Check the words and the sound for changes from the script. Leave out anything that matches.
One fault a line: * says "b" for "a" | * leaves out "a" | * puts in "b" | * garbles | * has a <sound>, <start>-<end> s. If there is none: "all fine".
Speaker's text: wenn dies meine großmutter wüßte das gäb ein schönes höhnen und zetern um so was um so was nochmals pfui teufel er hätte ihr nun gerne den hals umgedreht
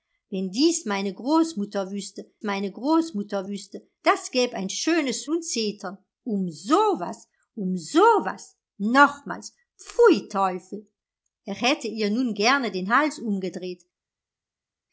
* puts in "meine großmutter wüßte"
* leaves out "höhnen"